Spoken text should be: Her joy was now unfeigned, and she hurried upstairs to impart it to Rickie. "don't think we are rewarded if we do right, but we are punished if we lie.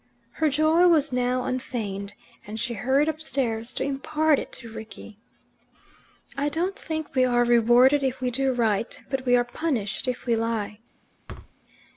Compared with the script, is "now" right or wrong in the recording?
right